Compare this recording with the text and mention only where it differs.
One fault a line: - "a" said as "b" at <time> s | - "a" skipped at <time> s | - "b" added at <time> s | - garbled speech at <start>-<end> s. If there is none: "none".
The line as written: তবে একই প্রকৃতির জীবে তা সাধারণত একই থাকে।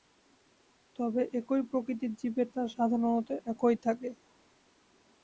none